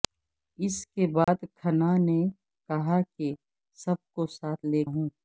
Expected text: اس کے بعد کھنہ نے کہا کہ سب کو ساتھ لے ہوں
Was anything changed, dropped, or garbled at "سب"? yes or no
no